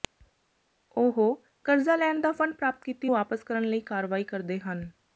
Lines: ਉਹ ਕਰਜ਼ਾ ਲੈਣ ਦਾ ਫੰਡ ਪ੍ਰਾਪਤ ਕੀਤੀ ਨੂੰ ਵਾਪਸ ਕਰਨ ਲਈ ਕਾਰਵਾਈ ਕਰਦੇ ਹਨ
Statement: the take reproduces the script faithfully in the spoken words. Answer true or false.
false